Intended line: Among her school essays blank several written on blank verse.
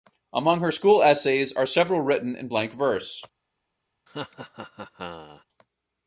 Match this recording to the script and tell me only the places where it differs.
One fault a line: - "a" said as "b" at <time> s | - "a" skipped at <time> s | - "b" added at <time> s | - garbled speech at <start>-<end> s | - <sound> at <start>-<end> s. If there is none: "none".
- "blank" said as "are" at 1.5 s
- "on" said as "in" at 2.4 s
- laugh at 4.1-5.5 s